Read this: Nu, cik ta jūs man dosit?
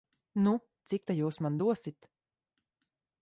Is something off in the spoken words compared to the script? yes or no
no